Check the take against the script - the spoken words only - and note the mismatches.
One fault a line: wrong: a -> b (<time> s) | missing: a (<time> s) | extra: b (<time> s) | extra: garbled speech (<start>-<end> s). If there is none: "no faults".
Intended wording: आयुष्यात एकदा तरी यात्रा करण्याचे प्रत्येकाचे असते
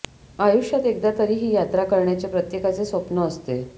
extra: ही (1.4 s)
extra: स्वप्न (2.9 s)